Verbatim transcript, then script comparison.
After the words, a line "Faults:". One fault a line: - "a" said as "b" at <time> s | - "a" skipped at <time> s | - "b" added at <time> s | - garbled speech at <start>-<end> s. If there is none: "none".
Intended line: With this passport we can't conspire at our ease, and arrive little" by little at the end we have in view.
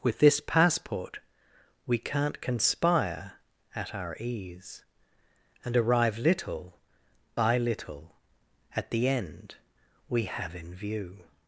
With this passport we can't conspire at our ease, and arrive little" by little at the end we have in view.
Faults:
none